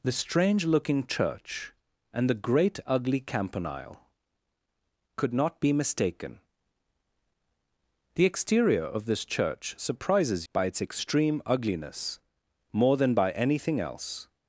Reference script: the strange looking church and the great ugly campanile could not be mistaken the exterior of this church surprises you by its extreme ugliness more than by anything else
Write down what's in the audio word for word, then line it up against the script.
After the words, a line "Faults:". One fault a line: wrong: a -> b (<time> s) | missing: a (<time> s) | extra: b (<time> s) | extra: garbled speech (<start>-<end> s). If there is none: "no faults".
the strange looking church and the great ugly campanile could not be mistaken the exterior of this church surprises by its extreme ugliness more than by anything else
Faults:
missing: you (10.5 s)